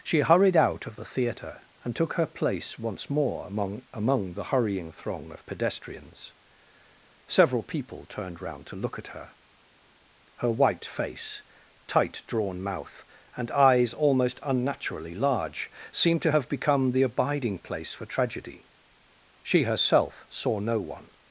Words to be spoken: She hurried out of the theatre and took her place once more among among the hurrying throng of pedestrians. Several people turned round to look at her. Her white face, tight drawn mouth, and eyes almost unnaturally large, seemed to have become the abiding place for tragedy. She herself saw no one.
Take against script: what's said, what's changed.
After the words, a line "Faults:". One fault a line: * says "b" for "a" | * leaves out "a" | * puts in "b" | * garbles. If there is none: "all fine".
She hurried out of the theatre and took her place once more among among the hurrying throng of pedestrians. Several people turned round to look at her. Her white face, tight drawn mouth, and eyes almost unnaturally large, seemed to have become the abiding place for tragedy. She herself saw no one.
Faults:
all fine